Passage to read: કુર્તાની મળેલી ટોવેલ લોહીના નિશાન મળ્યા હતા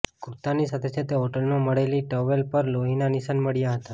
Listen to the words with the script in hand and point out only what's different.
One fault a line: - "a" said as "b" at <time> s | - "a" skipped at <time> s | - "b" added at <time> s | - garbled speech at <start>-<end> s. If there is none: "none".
- "સાથે સાથે હોટલમાં" added at 0.7 s
- "પર" added at 2.5 s